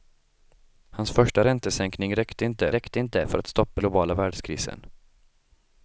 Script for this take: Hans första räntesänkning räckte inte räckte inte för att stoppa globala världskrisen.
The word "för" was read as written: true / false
true